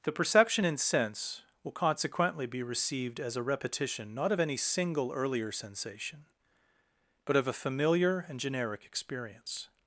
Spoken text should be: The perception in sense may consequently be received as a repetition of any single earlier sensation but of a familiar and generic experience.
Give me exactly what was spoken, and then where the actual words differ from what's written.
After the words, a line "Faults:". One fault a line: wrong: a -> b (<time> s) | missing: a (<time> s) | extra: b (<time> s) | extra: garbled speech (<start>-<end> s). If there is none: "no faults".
The perception in sense will consequently be received as a repetition not of any single earlier sensation but of a familiar and generic experience.
Faults:
wrong: may -> will (1.6 s)
extra: not (4.1 s)